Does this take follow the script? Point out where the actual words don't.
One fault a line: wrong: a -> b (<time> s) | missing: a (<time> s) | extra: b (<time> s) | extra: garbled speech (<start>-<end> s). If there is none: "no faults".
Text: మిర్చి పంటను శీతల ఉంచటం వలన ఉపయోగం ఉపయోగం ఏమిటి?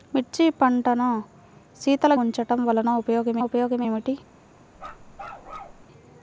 no faults